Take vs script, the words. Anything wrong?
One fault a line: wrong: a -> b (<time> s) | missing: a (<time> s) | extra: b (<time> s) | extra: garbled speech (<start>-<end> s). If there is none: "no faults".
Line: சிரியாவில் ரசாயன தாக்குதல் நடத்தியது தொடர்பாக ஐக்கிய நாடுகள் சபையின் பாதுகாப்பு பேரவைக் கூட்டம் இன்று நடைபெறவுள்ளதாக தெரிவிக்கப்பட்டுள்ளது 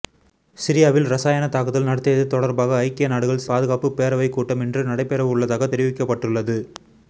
missing: சபையின் (3.5 s)